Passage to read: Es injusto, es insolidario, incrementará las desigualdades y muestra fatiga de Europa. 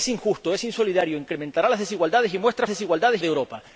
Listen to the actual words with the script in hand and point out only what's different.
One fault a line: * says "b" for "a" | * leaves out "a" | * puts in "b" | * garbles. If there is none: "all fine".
* says "desigualdades" for "fatiga"